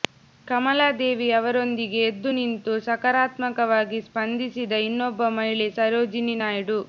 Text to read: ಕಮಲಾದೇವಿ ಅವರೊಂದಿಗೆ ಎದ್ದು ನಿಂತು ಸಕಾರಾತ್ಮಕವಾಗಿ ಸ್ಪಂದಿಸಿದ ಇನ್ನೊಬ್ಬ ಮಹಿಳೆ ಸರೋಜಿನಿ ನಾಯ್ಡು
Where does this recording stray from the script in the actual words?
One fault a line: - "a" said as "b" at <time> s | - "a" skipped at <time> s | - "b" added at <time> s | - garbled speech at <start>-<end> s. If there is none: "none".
none